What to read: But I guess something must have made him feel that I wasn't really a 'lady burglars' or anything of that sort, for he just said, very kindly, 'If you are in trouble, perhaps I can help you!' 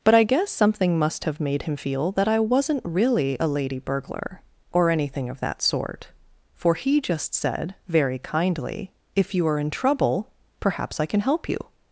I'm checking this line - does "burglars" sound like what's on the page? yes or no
no